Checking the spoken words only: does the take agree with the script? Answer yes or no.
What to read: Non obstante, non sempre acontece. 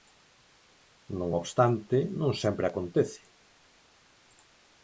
yes